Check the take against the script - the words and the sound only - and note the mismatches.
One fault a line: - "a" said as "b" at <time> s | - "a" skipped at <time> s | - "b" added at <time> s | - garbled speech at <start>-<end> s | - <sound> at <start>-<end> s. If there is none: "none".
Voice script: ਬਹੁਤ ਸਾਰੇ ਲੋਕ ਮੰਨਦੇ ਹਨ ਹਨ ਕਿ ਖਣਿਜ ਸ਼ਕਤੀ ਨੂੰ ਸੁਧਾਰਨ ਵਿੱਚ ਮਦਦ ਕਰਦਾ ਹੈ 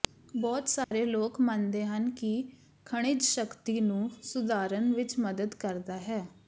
- dropout at 0.8-0.9 s
- "ਹਨ" skipped at 2.1 s